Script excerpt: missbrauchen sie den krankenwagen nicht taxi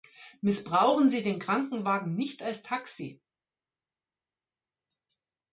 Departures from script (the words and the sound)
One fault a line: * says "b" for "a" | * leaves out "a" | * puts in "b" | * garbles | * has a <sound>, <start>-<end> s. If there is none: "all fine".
* puts in "als"